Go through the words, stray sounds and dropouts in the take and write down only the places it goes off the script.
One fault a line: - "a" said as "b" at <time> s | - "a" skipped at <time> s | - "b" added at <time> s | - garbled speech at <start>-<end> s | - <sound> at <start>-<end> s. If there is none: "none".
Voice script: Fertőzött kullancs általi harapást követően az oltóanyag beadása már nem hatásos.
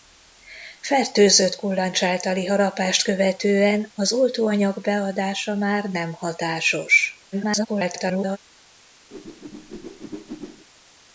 - garbled speech at 7.3-8.4 s
- whoosh at 9.1-10.7 s